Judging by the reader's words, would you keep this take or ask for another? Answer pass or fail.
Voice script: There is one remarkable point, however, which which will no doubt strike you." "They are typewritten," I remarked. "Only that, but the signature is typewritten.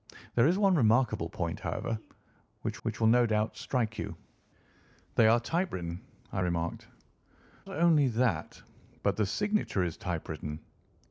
pass